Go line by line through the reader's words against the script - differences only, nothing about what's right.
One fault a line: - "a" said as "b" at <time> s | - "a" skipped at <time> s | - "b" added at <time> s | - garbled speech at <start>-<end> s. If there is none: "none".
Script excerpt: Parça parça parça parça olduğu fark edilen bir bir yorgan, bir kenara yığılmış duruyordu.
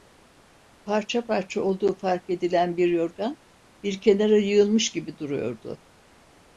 - "parça parça" skipped at 1.6 s
- "bir" skipped at 2.9 s
- "gibi" added at 4.9 s